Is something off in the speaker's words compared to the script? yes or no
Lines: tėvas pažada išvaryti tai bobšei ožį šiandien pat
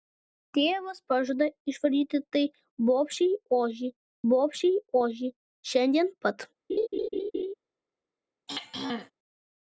yes